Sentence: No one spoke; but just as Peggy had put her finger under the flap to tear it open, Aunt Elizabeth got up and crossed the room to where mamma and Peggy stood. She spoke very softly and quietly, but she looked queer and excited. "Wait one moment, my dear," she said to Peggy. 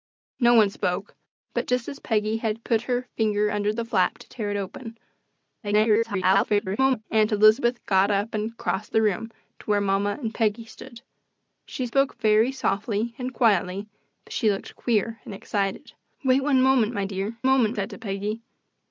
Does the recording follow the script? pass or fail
fail